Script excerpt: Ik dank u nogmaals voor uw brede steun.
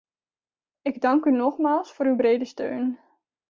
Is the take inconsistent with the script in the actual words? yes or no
no